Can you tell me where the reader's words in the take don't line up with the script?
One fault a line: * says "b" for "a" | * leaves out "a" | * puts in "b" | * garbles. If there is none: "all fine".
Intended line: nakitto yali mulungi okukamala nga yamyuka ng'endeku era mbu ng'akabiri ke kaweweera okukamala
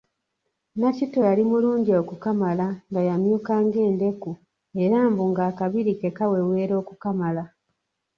all fine